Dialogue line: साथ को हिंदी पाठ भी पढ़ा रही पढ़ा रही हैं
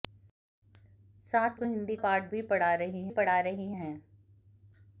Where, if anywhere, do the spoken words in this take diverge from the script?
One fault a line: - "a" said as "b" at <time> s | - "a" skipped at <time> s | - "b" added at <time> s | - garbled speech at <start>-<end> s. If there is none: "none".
none